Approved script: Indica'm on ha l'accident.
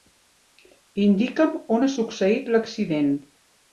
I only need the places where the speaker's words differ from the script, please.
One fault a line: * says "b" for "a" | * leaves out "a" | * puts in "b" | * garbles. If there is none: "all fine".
* puts in "succeït"